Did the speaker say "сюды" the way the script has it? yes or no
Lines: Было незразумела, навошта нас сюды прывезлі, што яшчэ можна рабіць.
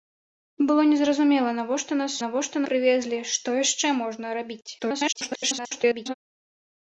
no